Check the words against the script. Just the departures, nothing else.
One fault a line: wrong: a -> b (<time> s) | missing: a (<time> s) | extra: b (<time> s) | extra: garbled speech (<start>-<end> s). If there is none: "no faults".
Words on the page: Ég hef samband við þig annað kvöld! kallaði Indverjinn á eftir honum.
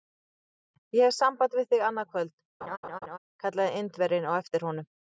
no faults